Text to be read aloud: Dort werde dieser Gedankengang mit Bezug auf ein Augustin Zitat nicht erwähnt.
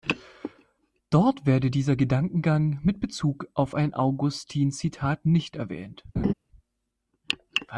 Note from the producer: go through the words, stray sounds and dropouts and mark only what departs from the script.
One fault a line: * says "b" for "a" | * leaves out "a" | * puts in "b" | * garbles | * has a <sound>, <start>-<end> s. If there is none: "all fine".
* has a laugh, 6.2-6.3 s